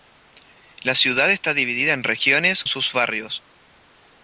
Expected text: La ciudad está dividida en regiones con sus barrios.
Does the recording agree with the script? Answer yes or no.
no